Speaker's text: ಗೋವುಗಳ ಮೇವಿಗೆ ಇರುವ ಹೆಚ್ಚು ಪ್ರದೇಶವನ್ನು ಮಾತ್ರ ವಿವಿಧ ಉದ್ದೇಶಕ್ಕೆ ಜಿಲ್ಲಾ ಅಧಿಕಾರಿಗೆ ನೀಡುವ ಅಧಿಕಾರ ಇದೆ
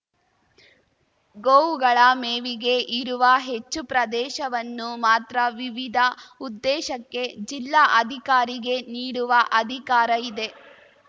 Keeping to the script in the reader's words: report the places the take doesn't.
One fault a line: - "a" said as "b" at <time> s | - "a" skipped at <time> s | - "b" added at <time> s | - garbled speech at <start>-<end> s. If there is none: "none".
none